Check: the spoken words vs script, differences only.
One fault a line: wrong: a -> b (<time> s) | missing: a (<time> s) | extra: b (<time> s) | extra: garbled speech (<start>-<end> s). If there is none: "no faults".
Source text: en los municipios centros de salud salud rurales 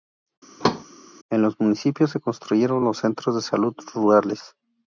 extra: se construyeron los (2.1 s)
missing: salud (3.7 s)